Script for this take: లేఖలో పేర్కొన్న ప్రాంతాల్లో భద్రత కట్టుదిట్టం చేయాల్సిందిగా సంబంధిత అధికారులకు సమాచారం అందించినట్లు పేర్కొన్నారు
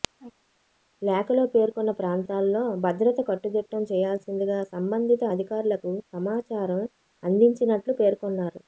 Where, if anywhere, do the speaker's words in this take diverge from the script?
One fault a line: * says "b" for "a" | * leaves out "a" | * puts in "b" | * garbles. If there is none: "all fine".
all fine